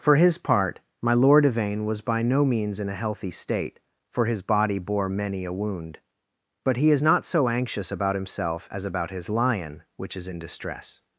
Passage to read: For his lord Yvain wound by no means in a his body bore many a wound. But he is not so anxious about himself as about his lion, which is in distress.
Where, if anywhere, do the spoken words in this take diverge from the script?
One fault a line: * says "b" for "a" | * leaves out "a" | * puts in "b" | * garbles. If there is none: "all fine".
* puts in "part my"
* says "was" for "wound"
* puts in "healthy state for"